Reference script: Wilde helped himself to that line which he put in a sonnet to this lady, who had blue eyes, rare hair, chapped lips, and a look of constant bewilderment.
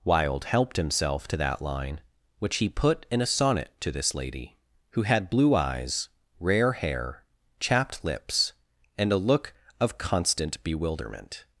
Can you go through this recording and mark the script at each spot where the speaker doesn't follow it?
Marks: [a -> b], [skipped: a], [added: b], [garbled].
Wilde helped himself to that line which he put in a sonnet to this lady, who had blue eyes, rare hair, chapped lips, and a look of constant bewilderment.